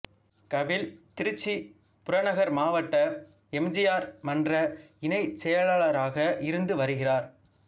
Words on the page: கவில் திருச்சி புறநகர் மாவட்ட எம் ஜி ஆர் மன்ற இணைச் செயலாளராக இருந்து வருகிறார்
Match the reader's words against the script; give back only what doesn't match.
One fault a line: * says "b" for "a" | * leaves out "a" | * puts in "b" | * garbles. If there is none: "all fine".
all fine